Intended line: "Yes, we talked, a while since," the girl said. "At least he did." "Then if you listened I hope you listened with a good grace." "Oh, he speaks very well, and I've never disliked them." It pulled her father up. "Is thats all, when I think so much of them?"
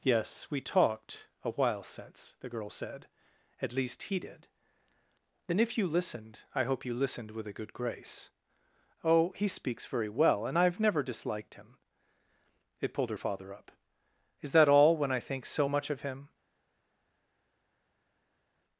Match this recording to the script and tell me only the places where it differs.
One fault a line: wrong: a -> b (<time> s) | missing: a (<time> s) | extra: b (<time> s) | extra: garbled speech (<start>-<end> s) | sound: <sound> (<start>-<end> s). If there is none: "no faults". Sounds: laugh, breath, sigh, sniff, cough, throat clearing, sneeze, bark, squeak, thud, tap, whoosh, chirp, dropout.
wrong: them -> him (11.5 s)
wrong: thats -> that (14.5 s)
wrong: them -> him (16.0 s)